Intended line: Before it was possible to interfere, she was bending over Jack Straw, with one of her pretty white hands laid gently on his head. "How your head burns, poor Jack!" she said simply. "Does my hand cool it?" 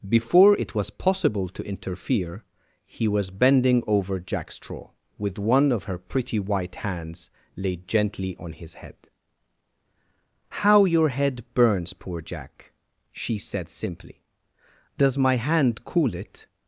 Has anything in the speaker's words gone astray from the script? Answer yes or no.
yes